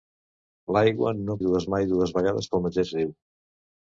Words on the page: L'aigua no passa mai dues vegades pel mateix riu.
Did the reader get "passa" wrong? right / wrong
wrong